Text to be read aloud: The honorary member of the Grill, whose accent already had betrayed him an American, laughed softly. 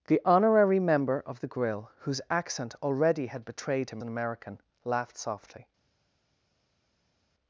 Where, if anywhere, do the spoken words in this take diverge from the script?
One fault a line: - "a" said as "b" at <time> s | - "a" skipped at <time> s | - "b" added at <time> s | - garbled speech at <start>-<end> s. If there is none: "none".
none